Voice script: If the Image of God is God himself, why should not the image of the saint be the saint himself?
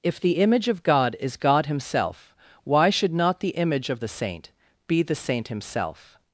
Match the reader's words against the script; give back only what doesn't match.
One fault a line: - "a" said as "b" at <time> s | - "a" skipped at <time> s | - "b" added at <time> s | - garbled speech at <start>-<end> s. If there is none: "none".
none